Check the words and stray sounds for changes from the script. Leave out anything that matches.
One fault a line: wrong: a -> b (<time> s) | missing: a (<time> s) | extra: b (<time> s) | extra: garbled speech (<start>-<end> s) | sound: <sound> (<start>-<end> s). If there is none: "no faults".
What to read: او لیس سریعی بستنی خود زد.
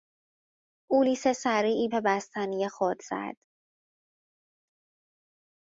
no faults